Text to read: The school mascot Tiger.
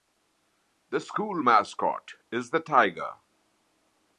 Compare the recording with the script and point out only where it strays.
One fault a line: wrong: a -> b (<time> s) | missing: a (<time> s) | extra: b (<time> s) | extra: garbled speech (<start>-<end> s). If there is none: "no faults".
extra: is the (2.3 s)